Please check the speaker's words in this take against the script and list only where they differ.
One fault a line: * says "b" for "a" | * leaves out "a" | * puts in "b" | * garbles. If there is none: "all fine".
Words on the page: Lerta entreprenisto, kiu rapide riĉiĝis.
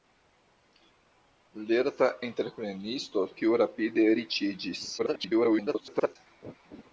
* garbles